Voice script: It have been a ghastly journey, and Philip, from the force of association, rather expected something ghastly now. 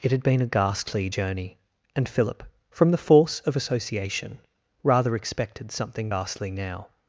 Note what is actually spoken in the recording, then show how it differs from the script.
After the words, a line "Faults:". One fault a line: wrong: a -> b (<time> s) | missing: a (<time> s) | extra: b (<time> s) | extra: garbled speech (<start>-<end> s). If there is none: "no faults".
It had been a ghastly journey, and Philip, from the force of association, rather expected something ghastly now.
Faults:
wrong: have -> had (0.1 s)